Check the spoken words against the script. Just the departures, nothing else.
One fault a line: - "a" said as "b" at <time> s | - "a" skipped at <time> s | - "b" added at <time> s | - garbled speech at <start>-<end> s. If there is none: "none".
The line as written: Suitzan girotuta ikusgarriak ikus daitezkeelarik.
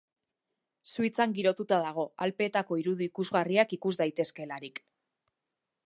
- "dago Alpeetako irudi" added at 1.8 s